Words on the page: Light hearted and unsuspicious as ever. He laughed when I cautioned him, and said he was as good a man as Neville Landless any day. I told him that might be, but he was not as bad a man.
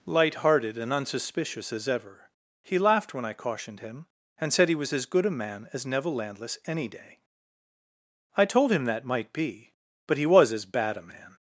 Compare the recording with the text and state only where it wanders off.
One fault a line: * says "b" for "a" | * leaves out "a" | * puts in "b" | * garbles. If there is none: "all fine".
* leaves out "not"